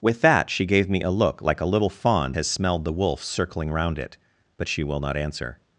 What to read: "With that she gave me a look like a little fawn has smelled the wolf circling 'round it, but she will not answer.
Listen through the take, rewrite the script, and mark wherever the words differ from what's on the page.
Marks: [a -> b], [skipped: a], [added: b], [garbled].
"With that she gave me a look like a little fawn has smelled the wolf circling 'round it, but she will not answer.